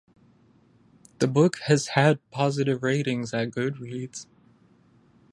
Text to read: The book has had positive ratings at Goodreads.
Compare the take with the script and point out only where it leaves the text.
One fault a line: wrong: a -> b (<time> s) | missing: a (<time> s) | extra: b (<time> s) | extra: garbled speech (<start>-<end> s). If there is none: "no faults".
no faults